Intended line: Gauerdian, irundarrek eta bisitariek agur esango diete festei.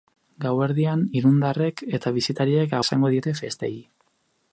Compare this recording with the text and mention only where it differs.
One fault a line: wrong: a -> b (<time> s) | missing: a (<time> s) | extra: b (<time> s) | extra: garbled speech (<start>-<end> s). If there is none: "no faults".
missing: agur (2.8 s)